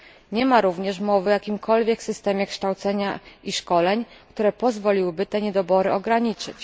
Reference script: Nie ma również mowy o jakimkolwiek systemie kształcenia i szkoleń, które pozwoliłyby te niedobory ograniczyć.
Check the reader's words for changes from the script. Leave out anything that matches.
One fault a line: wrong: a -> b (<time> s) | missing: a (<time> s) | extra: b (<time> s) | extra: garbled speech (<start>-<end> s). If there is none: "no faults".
no faults